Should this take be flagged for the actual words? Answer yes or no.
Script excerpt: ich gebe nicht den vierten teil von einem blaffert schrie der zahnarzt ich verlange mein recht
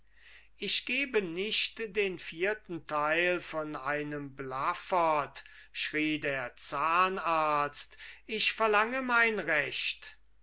no